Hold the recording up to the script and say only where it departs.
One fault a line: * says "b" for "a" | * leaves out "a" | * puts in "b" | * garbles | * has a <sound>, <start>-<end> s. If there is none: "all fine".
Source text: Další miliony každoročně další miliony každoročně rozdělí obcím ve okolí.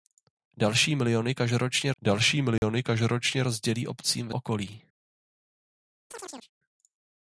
* has a dropout, 2.6-2.6 s
* has a chirp, 6.1-6.5 s